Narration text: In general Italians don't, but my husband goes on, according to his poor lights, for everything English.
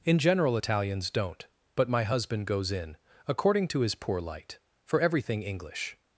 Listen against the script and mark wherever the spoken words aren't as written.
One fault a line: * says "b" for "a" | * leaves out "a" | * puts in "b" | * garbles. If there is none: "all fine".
* says "in" for "on"
* says "light" for "lights"